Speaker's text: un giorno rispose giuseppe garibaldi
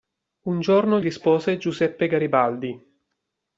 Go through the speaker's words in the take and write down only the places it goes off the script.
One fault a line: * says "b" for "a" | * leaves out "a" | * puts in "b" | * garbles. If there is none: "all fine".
all fine